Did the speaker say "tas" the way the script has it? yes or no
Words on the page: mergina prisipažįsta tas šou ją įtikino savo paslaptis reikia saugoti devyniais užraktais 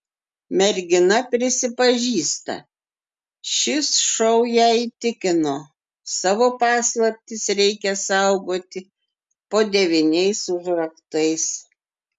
no